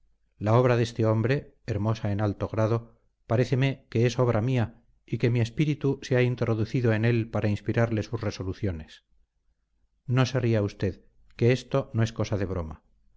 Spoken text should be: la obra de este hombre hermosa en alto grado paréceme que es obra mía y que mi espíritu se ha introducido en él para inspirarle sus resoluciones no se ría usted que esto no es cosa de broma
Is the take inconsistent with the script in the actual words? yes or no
no